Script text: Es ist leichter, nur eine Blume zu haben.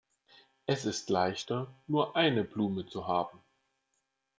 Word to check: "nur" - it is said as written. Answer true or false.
true